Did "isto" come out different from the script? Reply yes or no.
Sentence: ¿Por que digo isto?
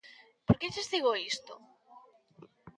no